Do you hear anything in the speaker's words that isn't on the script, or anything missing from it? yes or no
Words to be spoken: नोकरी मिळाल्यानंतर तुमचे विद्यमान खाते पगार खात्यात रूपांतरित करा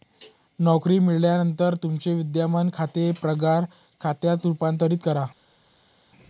no